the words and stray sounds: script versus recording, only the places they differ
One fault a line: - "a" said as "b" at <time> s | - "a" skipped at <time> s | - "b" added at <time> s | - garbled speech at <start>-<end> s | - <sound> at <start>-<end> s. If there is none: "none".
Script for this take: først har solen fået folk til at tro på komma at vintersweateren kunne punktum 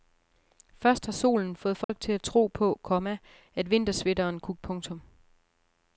- dropout at 1.8-1.9 s